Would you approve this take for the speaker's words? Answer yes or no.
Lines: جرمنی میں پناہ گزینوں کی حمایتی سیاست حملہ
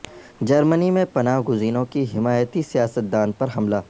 no